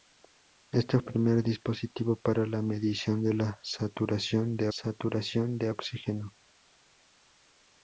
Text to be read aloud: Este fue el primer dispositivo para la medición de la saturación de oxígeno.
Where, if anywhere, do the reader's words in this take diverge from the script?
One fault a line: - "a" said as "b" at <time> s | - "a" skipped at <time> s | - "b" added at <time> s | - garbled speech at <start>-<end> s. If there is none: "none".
- "fue" skipped at 1.0 s
- "saturación de" added at 4.7 s